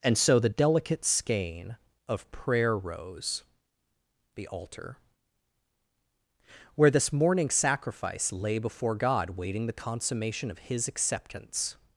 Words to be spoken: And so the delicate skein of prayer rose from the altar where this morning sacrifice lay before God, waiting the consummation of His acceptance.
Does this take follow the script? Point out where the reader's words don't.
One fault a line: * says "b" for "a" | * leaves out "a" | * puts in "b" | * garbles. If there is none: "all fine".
* leaves out "from"